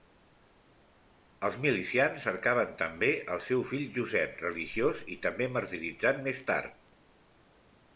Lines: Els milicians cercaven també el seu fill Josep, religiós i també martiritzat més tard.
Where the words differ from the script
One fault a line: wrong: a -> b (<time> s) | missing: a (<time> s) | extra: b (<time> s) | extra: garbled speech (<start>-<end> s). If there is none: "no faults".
no faults